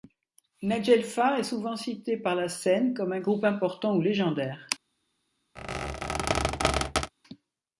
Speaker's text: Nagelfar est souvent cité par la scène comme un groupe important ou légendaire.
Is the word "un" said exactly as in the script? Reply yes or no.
yes